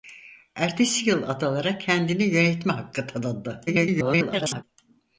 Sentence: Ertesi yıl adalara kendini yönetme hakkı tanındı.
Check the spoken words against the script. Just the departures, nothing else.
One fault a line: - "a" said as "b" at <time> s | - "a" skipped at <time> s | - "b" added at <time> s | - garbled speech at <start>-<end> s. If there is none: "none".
- garbled speech at 3.7-4.6 s